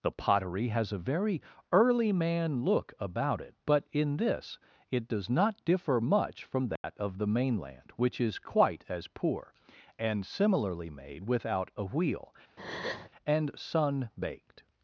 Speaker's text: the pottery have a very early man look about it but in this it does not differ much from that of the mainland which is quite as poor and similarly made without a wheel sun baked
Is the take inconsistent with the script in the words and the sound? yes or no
yes